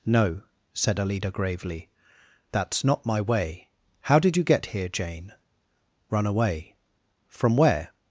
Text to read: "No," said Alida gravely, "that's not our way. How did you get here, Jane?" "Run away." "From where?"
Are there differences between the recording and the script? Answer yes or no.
yes